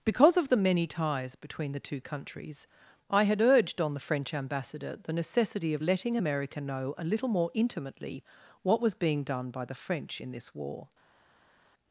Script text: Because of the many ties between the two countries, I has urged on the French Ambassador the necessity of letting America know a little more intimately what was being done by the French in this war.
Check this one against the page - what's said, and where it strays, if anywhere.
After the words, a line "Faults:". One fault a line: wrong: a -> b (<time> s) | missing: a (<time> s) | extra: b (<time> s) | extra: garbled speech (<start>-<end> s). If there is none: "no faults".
Because of the many ties between the two countries, I had urged on the French Ambassador the necessity of letting America know a little more intimately what was being done by the French in this war.
Faults:
wrong: has -> had (3.2 s)